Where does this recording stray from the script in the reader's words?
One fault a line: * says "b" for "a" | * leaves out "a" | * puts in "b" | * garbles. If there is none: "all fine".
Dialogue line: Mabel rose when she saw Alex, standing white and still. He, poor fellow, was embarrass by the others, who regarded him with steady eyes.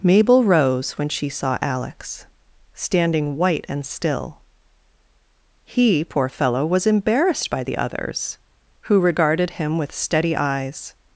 * says "embarrassed" for "embarrass"